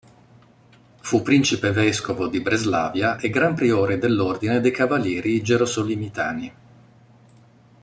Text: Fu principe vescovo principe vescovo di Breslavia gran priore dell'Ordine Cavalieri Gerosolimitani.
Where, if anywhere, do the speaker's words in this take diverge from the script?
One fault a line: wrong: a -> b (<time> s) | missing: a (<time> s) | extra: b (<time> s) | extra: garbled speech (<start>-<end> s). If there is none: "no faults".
missing: principe vescovo (2.3 s)
extra: e (3.2 s)
extra: dei (4.6 s)